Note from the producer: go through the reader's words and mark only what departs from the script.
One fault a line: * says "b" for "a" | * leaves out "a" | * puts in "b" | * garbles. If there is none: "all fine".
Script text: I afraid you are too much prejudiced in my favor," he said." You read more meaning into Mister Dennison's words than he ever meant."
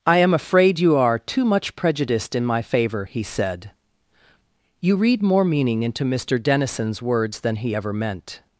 * puts in "am"